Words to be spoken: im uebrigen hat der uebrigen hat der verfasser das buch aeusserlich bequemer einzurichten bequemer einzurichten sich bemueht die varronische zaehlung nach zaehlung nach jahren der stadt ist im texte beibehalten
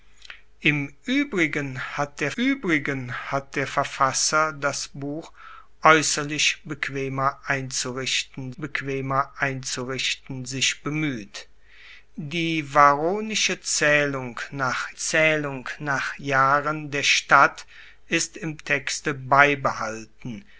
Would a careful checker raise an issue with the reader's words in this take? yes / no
no